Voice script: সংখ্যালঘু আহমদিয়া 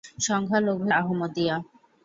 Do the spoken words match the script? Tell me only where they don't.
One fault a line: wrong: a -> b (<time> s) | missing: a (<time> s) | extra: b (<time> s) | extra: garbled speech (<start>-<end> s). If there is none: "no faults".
no faults